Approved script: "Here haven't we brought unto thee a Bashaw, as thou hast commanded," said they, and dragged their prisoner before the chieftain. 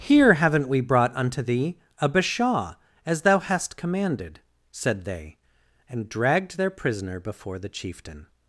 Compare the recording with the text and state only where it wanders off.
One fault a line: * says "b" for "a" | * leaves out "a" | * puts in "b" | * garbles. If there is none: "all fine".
all fine